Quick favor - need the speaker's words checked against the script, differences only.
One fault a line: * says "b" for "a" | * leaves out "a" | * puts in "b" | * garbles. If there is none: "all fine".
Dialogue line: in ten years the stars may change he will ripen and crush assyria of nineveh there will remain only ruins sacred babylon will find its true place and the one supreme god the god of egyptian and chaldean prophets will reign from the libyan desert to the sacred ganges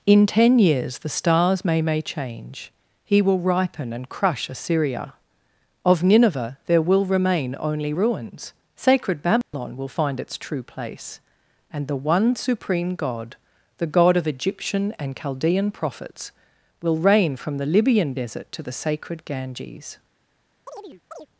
* puts in "may"